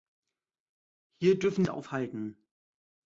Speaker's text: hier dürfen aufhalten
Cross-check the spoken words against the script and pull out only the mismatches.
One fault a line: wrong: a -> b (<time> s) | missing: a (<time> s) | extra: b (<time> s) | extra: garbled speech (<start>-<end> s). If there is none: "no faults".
no faults